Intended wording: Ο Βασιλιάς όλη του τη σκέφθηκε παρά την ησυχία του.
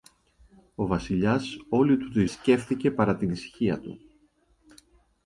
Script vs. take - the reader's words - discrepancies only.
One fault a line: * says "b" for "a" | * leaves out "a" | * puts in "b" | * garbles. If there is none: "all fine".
all fine